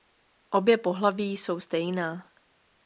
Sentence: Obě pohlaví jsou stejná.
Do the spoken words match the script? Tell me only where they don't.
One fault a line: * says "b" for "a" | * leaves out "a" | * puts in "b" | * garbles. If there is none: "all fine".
all fine